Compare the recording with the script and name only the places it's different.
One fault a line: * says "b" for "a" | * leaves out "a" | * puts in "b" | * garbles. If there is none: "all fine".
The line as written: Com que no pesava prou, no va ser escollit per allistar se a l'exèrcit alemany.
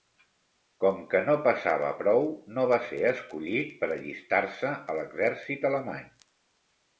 all fine